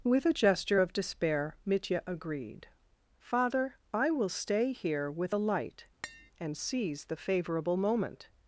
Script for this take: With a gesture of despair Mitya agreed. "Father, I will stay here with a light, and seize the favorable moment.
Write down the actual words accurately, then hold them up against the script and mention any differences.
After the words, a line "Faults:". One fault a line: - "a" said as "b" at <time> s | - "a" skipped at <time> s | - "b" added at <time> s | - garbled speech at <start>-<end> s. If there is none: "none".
With a gesture of despair Mitya agreed. "Father, I will stay here with a light, and seize the favorable moment.
Faults:
none